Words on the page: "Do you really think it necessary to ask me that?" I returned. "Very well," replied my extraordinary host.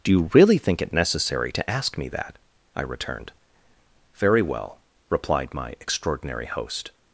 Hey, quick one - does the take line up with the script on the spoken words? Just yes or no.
yes